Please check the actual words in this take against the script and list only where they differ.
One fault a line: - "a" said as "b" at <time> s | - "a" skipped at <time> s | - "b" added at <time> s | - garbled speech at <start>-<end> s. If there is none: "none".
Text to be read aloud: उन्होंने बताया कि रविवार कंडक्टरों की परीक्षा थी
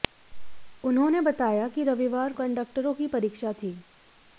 none